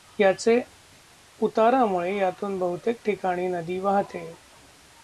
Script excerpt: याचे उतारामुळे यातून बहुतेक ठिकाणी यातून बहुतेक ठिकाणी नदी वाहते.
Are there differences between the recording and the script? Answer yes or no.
yes